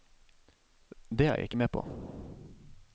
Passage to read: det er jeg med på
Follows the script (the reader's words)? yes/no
no